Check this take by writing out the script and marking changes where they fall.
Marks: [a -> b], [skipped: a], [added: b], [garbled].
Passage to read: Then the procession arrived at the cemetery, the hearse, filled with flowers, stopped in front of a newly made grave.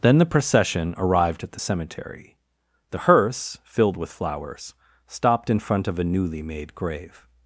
Then the procession arrived at the cemetery, the hearse, filled with flowers, stopped in front of a newly made grave.